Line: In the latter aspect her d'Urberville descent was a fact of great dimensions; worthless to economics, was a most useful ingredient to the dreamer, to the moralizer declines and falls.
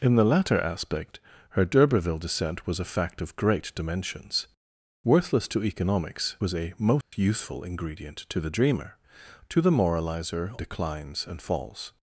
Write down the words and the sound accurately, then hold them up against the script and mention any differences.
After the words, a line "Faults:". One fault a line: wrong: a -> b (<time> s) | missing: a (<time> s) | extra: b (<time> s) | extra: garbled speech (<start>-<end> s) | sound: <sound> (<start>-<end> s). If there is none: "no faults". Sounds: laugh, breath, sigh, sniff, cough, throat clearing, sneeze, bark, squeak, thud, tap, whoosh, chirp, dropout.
In the latter aspect her d'Urberville descent was a fact of great dimensions; worthless to economics, was a most useful ingredient to the dreamer, to the moralizer declines and falls.
Faults:
sound: dropout (7.0-7.1 s)